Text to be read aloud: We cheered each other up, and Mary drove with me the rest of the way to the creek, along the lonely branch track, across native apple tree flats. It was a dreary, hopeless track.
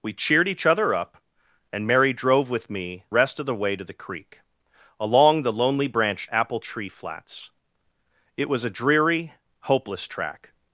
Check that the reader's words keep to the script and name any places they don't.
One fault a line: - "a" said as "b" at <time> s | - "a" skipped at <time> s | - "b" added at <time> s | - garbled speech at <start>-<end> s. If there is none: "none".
- "the" skipped at 3.0 s
- "track across native" skipped at 6.3 s